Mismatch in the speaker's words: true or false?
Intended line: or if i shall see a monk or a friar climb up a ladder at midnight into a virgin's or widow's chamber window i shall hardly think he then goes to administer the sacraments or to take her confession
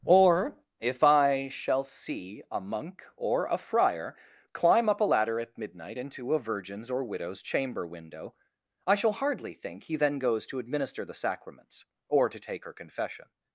false